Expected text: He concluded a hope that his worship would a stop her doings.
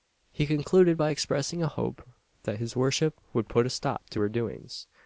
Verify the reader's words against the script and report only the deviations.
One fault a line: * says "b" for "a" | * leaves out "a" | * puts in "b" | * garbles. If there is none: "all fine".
* puts in "by expressing"
* puts in "put"
* puts in "to"